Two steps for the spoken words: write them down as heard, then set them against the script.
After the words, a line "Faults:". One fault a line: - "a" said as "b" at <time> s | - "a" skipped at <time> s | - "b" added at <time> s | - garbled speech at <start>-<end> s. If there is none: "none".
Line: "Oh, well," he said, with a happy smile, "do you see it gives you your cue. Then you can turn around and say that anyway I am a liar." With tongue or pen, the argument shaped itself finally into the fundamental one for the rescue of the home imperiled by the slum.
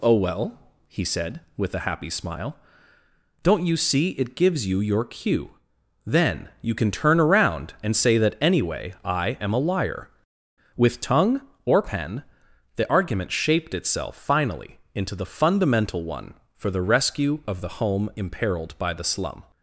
"Oh, well," he said, with a happy smile, "don't you see it gives you your cue. Then you can turn around and say that anyway I am a liar." With tongue or pen, the argument shaped itself finally into the fundamental one for the rescue of the home imperiled by the slum.
Faults:
- "do" said as "don't" at 3.4 s